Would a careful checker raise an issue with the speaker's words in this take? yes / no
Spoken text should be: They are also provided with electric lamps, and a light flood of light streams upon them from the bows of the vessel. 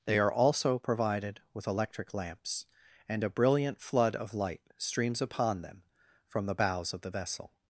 yes